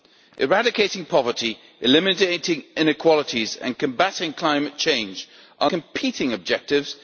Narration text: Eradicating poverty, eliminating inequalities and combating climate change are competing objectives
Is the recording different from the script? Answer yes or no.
no